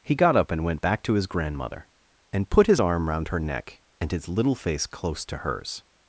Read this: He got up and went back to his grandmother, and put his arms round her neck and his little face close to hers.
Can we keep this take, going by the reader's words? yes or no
no